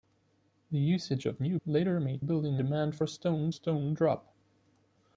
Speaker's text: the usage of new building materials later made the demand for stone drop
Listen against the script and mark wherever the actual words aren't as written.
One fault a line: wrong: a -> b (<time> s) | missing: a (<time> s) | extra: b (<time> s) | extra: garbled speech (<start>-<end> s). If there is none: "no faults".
missing: building materials (1.6 s)
wrong: the -> building (2.2 s)
extra: stone (3.5 s)